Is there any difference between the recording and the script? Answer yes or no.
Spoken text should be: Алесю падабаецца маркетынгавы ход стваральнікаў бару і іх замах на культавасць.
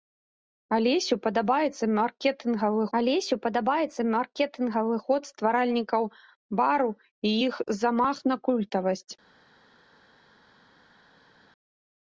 yes